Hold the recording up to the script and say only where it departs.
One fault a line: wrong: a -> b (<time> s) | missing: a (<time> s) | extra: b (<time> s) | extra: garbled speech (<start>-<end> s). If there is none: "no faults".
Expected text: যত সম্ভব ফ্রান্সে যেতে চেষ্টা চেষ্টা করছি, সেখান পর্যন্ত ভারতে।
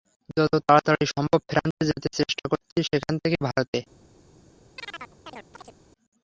extra: তাড়াতাড়ি (0.7 s)
missing: চেষ্টা (2.5 s)
wrong: পর্যন্ত -> থেকে (3.2 s)